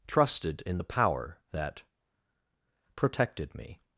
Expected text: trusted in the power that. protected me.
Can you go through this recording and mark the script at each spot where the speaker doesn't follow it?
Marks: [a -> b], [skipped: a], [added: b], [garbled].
trusted in the power that. protected me.